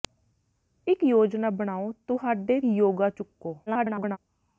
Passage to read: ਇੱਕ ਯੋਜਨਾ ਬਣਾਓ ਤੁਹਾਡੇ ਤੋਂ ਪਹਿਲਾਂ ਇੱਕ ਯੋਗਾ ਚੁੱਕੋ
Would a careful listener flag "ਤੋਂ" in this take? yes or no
yes